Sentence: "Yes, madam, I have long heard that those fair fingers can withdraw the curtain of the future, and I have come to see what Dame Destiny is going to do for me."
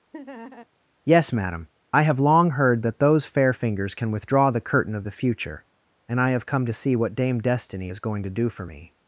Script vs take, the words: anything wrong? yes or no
no